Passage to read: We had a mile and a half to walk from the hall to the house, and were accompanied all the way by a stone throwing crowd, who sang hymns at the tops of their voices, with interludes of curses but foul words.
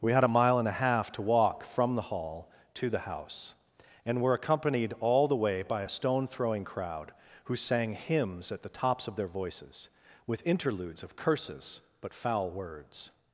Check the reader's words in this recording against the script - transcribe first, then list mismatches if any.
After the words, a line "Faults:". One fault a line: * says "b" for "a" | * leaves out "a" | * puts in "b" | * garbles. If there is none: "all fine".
We had a mile and a half to walk from the hall to the house, and were accompanied all the way by a stone throwing crowd, who sang hymns at the tops of their voices, with interludes of curses but foul words.
Faults:
all fine